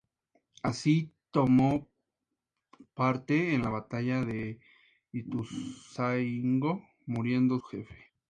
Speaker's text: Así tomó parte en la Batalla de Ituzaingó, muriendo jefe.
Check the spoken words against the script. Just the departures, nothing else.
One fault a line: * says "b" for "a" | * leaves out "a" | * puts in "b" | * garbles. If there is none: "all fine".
all fine